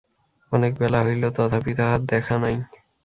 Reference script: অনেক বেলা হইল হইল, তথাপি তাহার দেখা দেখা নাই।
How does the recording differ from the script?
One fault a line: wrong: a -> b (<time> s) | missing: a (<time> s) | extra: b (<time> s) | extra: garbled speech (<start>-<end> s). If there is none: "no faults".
missing: হইল (1.2 s)
missing: দেখা (2.4 s)